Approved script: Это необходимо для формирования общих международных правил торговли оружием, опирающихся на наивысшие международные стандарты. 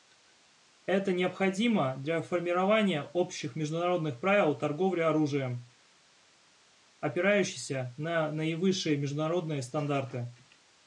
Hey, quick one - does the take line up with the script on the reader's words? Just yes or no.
yes